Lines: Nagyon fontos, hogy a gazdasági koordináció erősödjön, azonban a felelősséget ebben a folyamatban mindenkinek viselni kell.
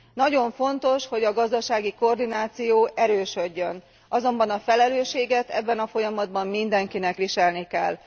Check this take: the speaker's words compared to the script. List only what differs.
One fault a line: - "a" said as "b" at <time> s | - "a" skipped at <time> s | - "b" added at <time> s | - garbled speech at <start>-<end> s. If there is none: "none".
none